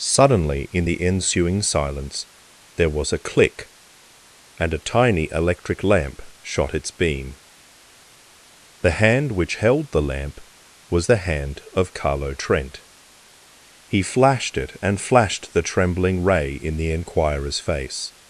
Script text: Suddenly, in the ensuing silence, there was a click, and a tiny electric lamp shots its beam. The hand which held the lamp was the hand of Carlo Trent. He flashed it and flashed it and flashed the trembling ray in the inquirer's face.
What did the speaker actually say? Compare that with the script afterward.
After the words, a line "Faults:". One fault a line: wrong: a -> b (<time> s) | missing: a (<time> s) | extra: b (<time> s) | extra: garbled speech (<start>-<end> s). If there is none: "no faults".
Suddenly, in the ensuing silence, there was a click, and a tiny electric lamp shot its beam. The hand which held the lamp was the hand of Carlo Trent. He flashed it and flashed the trembling ray in the inquirer's face.
Faults:
wrong: shots -> shot (6.4 s)
missing: it and flashed (15.5 s)